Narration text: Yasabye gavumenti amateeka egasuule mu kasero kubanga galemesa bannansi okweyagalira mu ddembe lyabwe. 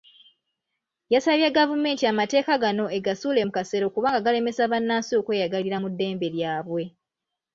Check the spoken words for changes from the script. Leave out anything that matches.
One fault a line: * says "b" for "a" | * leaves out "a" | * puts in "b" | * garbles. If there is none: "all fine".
* puts in "gano"